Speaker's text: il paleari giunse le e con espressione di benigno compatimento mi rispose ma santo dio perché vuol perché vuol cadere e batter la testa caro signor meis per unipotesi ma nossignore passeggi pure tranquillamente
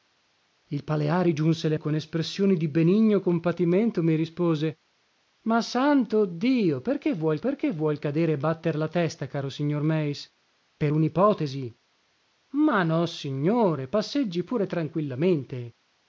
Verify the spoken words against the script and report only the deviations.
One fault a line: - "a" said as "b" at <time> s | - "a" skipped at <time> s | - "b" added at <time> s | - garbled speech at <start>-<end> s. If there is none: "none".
none